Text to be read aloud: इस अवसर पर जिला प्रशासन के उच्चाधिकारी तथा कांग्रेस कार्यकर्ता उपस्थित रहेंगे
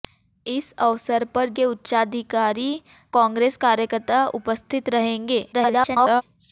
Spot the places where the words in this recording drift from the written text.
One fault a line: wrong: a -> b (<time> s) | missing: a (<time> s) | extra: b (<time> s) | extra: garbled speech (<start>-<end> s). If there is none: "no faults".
missing: जिला प्रशासन (1.5 s)
missing: तथा (2.7 s)
extra: garbled speech (5.5-6.2 s)